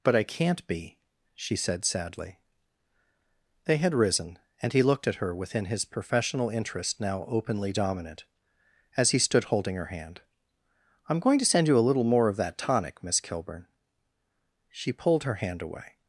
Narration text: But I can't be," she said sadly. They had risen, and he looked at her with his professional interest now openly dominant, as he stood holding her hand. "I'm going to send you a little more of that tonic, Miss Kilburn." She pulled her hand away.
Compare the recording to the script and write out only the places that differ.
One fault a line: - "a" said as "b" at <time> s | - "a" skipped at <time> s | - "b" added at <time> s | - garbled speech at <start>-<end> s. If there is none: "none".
- "with" said as "within" at 5.3 s